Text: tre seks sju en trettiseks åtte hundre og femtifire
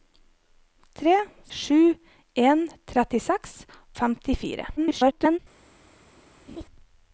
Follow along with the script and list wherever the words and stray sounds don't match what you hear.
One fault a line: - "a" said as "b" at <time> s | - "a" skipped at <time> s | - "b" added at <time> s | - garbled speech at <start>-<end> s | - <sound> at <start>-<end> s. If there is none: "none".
- "seks" skipped at 1.1 s
- "åtte hundre" skipped at 3.5 s
- garbled speech at 4.8-5.4 s
- laugh at 6.5-6.7 s